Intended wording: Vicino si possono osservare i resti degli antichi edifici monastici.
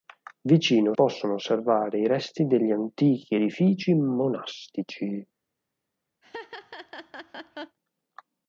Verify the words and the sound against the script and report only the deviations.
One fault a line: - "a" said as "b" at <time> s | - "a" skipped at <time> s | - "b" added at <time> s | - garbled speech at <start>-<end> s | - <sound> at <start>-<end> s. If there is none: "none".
- "si" skipped at 0.9 s
- laugh at 6.2-7.8 s